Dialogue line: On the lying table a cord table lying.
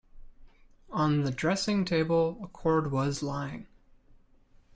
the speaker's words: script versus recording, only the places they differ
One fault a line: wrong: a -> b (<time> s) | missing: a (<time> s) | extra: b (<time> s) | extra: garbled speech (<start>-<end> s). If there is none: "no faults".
wrong: lying -> dressing (1.3 s)
wrong: table -> was (2.9 s)